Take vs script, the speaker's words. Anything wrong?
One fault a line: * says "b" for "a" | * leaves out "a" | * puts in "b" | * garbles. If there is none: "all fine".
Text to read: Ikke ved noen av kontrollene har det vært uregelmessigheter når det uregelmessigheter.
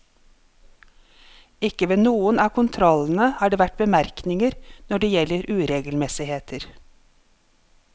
* says "bemerkninger" for "uregelmessigheter"
* puts in "gjelder"